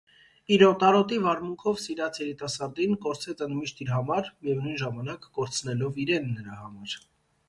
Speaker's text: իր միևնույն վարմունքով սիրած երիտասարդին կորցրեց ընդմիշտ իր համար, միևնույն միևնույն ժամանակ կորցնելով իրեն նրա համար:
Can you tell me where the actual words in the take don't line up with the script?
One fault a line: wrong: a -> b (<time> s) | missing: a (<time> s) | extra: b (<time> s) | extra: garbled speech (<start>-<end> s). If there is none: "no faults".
wrong: միևնույն -> օտարոտի (0.7 s)
missing: միևնույն (4.8 s)